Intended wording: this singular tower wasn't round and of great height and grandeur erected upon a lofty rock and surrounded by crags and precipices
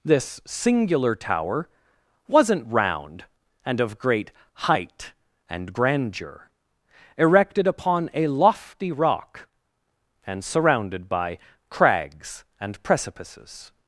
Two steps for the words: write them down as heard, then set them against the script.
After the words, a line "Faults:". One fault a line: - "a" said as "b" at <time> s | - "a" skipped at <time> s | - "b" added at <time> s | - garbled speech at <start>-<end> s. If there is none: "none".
this singular tower wasn't round and of great height and grandeur erected upon a lofty rock and surrounded by crags and precipices
Faults:
none